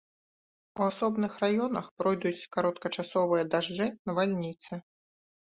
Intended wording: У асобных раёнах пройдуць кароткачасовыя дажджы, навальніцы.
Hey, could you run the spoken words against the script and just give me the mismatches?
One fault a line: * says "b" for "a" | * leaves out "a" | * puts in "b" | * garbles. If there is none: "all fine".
all fine